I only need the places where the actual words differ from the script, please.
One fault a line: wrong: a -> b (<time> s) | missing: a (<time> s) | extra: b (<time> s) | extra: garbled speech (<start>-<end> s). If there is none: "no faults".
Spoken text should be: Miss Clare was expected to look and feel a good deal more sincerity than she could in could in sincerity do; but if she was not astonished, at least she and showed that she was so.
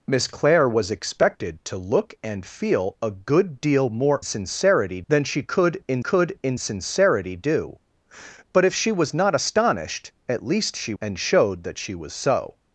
no faults